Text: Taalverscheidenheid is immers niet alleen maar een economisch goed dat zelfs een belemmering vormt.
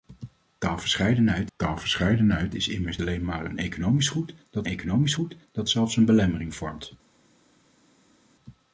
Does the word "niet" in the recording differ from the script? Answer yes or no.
yes